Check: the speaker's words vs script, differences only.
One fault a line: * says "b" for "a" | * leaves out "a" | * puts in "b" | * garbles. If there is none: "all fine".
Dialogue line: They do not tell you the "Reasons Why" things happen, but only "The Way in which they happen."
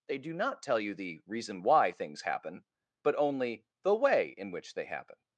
* says "Reason" for "Reasons"